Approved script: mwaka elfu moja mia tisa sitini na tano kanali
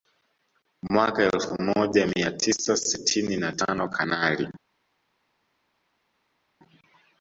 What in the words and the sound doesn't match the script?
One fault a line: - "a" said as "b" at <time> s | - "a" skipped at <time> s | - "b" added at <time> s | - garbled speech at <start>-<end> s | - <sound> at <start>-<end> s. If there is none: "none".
none